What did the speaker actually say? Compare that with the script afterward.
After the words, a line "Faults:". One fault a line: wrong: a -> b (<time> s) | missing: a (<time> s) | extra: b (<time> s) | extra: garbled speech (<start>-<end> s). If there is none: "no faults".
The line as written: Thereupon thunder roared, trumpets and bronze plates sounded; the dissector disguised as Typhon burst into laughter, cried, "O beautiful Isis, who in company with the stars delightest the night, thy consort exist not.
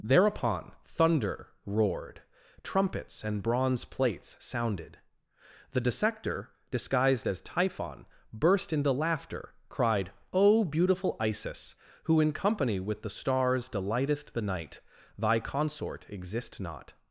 Thereupon thunder roared, trumpets and bronze plates sounded; the dissector disguised as Typhon burst into laughter, cried, "O beautiful Isis, who in company with the stars delightest the night, thy consort exist not.
Faults:
no faults